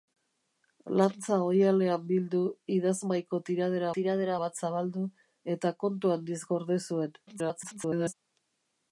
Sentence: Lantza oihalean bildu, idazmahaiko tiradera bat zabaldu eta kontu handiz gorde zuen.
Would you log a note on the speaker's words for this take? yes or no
yes